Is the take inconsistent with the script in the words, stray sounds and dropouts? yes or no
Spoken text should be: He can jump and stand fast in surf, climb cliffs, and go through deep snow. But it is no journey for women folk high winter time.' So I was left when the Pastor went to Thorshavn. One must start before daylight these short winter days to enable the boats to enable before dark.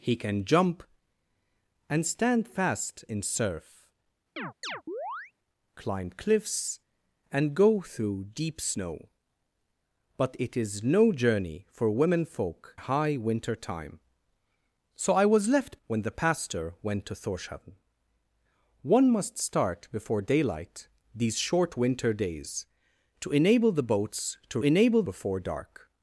yes